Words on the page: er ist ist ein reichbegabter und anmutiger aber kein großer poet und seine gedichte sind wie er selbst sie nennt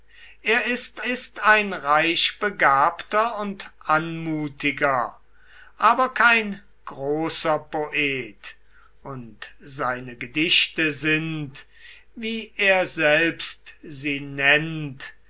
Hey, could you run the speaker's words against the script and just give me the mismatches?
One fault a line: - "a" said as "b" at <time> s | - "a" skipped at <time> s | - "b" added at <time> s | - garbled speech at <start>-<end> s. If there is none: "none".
none